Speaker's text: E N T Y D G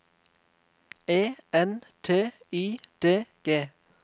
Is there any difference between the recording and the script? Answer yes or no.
no